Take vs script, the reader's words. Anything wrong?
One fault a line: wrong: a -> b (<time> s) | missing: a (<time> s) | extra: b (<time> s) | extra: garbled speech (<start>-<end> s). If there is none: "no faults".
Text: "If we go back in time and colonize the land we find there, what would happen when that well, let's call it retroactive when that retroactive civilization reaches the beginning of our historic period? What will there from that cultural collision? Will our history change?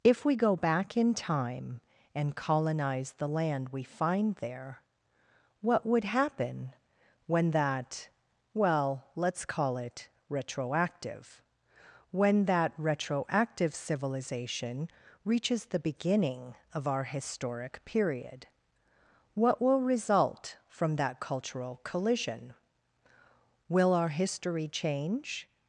wrong: there -> result (19.8 s)